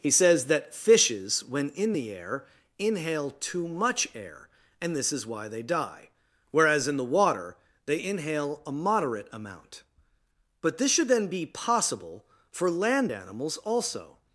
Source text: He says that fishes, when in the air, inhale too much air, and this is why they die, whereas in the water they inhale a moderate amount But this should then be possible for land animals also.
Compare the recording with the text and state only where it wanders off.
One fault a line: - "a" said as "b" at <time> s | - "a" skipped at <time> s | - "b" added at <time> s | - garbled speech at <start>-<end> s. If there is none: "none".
none